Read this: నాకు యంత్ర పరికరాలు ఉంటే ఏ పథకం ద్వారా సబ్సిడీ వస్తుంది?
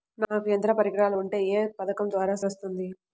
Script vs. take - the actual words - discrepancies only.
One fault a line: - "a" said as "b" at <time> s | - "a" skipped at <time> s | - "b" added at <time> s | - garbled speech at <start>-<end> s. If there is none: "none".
- "సబ్సిడీ" skipped at 2.4 s